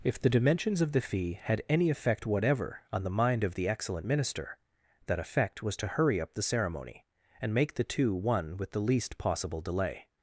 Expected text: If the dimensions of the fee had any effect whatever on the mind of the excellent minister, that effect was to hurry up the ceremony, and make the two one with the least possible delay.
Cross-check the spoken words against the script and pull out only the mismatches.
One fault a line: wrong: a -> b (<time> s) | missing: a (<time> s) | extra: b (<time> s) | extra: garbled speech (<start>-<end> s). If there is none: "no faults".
no faults